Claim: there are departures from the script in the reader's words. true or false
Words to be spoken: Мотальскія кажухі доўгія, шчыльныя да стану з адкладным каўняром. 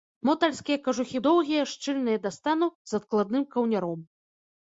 false